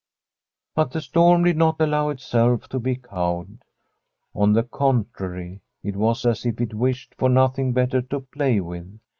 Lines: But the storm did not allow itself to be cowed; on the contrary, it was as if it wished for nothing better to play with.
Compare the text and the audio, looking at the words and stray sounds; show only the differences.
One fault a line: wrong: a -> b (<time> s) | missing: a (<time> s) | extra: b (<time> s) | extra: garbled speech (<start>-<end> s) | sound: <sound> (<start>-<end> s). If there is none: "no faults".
no faults